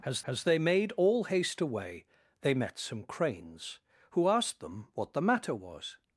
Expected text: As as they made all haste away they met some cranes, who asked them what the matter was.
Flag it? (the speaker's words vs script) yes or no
no